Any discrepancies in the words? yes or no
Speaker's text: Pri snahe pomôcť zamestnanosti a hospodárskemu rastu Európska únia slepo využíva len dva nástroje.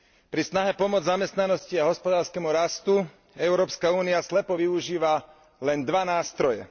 no